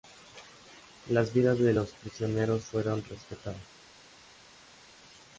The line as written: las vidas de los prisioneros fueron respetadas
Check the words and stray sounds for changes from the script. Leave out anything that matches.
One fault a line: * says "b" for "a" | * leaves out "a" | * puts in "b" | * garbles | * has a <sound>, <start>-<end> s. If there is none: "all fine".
all fine